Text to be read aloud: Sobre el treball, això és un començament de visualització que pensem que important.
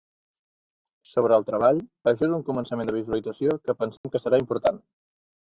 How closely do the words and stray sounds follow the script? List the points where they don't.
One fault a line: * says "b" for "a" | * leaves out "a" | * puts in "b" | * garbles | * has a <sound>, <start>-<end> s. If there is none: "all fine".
* has a dropout, 4.0-4.0 s
* puts in "serà"